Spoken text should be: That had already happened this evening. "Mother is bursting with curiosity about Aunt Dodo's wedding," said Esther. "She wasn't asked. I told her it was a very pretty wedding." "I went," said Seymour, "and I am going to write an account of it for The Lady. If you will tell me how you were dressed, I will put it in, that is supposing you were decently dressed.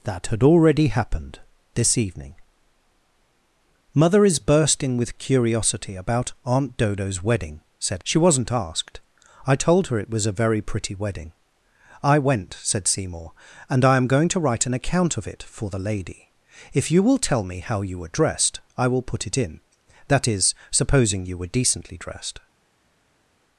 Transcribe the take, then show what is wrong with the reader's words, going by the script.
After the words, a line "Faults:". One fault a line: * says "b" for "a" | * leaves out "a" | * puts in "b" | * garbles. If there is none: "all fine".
That had already happened this evening. "Mother is bursting with curiosity about Aunt Dodo's wedding," said. "She wasn't asked. I told her it was a very pretty wedding." "I went," said Seymour, "and I am going to write an account of it for The Lady. If you will tell me how you were dressed, I will put it in, that is supposing you were decently dressed.
Faults:
* leaves out "Esther"